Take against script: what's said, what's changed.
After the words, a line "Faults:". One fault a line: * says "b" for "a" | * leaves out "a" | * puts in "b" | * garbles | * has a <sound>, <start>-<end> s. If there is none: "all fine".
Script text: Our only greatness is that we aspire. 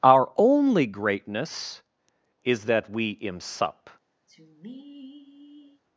Our only greatness is that we imsup.
Faults:
* says "imsup" for "aspire"
* has a sigh, 4.3-5.8 s